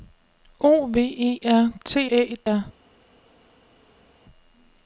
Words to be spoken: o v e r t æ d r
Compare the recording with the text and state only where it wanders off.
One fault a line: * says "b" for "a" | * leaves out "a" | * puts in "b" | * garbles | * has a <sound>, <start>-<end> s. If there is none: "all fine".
all fine